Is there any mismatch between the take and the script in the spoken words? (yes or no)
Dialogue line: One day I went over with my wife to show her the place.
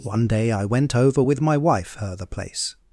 yes